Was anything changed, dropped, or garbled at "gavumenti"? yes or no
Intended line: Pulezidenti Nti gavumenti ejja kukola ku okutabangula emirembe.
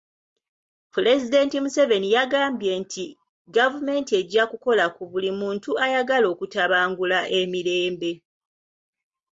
no